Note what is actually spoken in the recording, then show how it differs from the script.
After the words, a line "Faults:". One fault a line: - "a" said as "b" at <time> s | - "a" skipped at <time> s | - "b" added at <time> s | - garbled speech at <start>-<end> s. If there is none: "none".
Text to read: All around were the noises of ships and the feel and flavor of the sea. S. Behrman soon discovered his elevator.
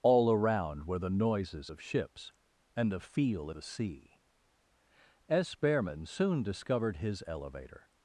All around were the noises of ships and the feel the sea. S. Behrman soon discovered his elevator.
Faults:
- "and flavor of" skipped at 3.5 s